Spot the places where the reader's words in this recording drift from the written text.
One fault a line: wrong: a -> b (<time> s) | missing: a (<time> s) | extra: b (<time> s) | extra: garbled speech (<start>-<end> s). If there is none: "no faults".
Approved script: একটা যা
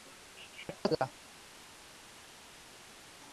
no faults